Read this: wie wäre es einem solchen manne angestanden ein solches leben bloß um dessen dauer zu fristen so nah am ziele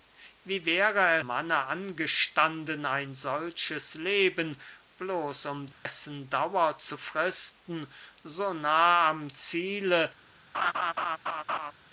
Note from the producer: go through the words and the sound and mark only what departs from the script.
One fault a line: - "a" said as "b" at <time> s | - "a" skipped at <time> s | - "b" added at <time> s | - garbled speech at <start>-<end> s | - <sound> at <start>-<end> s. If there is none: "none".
- "es einem solchen" skipped at 1.2 s
- dropout at 5.7-5.9 s
- laugh at 10.5-11.7 s